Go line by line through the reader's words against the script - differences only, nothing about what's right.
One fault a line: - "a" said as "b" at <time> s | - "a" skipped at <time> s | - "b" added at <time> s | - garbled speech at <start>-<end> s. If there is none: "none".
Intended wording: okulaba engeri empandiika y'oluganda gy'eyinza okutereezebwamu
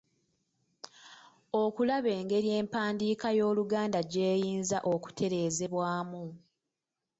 none